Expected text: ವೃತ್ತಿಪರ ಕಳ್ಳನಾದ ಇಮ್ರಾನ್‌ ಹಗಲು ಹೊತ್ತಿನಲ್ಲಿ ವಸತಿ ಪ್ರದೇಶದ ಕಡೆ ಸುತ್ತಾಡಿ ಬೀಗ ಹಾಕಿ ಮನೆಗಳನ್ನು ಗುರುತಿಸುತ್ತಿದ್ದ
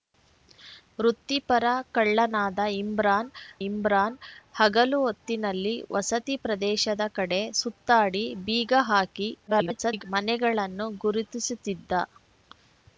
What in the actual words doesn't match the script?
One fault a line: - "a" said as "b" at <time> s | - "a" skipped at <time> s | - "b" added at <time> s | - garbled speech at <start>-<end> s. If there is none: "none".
- "ಇಮ್ರಾನ್" added at 3.6 s
- garbled speech at 9.5-10.0 s